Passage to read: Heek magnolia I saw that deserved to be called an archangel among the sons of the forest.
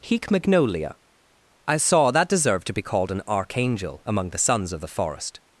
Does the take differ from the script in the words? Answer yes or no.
no